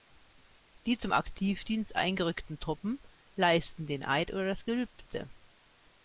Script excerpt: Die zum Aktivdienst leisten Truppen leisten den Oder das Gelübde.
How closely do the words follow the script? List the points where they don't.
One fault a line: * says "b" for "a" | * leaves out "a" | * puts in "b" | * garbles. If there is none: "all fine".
* says "eingerückten" for "leisten"
* puts in "Eid"